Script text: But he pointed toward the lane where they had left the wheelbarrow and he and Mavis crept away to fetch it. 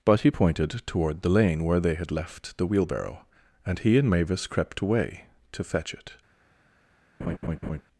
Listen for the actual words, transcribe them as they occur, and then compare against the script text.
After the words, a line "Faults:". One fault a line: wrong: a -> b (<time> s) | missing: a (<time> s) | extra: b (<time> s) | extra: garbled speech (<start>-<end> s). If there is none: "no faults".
But he pointed toward the lane where they had left the wheelbarrow and he and Mavis crept away to fetch it.
Faults:
no faults